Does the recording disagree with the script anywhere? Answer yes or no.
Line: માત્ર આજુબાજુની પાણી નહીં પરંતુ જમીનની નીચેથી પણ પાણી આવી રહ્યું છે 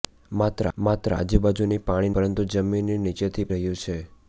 yes